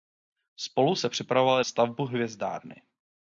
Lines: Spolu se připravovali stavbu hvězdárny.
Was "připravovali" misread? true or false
false